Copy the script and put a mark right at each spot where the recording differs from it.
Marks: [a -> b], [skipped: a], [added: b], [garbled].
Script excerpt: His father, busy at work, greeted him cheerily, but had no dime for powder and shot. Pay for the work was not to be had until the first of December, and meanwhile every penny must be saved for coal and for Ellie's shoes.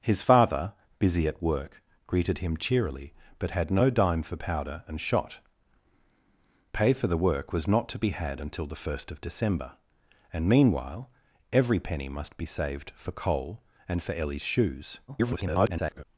His father, busy at work, greeted him cheerily, but had no dime for powder and shot. Pay for the work was not to be had until the first of December, and meanwhile every penny must be saved for coal and for Ellie's shoes. [garbled]